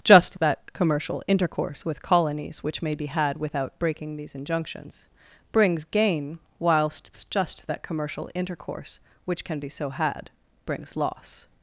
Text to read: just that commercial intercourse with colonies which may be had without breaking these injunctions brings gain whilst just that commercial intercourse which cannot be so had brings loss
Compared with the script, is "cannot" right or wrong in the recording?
wrong